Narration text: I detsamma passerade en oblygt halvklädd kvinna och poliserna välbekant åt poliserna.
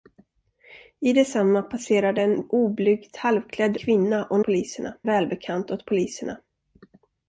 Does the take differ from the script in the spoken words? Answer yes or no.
no